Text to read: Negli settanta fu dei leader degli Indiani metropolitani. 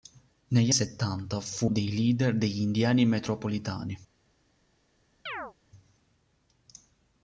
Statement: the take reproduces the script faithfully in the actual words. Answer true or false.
true